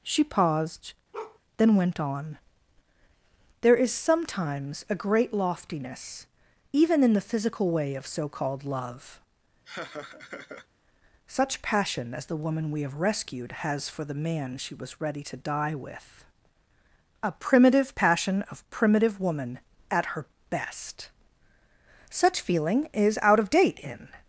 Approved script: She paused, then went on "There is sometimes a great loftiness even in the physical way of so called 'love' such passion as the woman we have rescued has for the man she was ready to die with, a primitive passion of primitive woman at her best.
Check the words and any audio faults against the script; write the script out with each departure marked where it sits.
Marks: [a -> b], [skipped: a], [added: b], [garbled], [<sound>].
She paused, [bark] then went on "There is sometimes a great loftiness even in the physical way of so called 'love' [laugh] such passion as the woman we have rescued has for the man she was ready to die with, a primitive passion of primitive woman at her best. [added: Such feeling is out of date in]